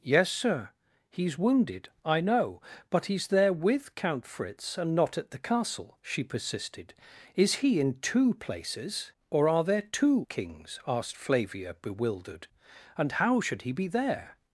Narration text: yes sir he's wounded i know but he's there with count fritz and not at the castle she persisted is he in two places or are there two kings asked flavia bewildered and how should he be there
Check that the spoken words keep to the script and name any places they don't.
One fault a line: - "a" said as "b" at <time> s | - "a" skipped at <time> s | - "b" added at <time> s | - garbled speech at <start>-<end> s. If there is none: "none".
none